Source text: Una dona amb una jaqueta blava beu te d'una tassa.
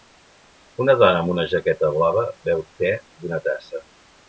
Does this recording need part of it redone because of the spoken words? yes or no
no